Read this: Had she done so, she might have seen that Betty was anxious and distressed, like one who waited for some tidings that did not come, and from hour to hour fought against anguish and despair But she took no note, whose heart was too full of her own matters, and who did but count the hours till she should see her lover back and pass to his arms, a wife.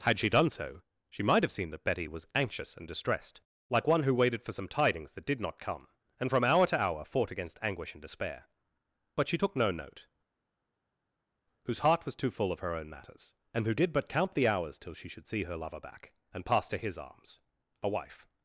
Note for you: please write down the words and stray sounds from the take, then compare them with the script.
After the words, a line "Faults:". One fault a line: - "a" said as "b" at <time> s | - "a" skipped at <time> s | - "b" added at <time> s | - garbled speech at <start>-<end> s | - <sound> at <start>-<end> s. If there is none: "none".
Had she done so, she might have seen that Betty was anxious and distressed, like one who waited for some tidings that did not come, and from hour to hour fought against anguish and despair But she took no note, whose heart was too full of her own matters, and who did but count the hours till she should see her lover back and pass to his arms, a wife.
Faults:
none